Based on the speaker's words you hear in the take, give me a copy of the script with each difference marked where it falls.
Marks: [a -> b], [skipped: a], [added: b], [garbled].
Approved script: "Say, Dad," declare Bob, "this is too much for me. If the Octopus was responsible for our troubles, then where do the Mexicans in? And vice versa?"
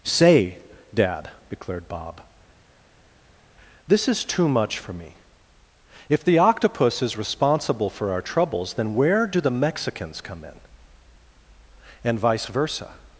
"Say, Dad," [declare -> declared] Bob, "this is too much for me. If the Octopus [was -> is] responsible for our troubles, then where do the Mexicans [added: come] in? And vice versa?"